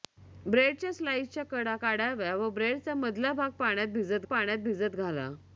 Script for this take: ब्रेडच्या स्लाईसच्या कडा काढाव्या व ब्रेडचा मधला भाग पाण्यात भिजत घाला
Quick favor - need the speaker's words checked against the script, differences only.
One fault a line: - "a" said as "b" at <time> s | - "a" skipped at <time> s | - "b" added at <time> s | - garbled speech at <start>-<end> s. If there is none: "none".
- "पाण्यात भिजत" added at 4.3 s